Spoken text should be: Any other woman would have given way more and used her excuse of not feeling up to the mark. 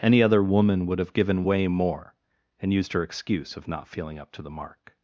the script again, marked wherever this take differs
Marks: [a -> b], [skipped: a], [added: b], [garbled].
Any other woman would have given way more and used her excuse of not feeling up to the mark.